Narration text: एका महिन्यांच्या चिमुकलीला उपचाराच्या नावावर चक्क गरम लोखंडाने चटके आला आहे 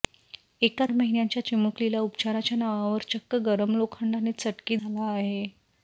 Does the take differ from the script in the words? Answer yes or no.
no